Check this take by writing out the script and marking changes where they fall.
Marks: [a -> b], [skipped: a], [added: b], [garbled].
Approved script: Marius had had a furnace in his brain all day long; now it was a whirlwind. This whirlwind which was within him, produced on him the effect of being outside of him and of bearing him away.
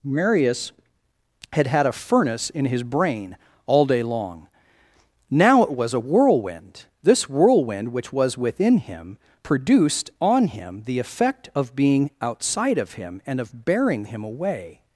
Marius had had a furnace in his brain all day long; now it was a whirlwind. This whirlwind which was within him, produced on him the effect of being outside of him and of bearing him away.